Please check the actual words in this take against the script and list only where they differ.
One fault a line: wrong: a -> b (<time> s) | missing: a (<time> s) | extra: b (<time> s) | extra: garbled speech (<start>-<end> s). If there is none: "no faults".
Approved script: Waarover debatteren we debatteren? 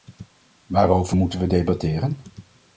wrong: debatteren -> moeten (1.1 s)